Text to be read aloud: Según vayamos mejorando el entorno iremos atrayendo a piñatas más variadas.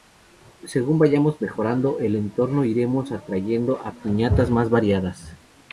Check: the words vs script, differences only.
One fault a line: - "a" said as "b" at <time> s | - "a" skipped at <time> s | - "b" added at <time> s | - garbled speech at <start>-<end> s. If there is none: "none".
none